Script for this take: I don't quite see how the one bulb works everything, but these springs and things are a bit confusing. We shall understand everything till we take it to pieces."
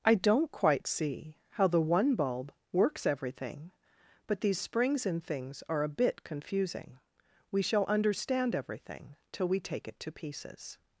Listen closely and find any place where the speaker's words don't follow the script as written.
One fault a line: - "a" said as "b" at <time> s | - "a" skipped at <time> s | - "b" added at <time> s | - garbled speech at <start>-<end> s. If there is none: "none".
none